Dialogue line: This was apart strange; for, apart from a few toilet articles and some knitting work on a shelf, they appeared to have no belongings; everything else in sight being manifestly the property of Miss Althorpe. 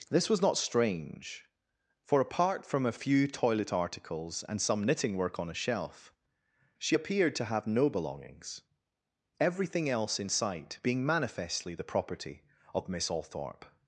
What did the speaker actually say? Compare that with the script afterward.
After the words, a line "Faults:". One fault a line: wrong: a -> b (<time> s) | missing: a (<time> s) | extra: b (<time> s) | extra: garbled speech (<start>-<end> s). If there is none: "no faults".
This was not strange; for, apart from a few toilet articles and some knitting work on a shelf, she appeared to have no belongings; everything else in sight being manifestly the property of Miss Althorpe.
Faults:
wrong: apart -> not (0.4 s)
wrong: they -> she (6.8 s)